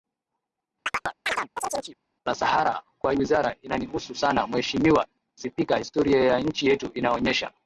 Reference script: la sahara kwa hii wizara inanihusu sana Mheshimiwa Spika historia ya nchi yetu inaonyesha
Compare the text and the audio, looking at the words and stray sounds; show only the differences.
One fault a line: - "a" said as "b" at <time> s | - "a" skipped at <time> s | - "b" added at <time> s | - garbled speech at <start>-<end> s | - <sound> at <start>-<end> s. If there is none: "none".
- chirp at 0.9-2.0 s
- "hii" skipped at 3.1 s